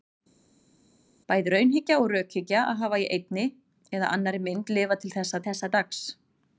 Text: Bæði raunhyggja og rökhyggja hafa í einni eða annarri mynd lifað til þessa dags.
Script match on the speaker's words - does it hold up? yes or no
no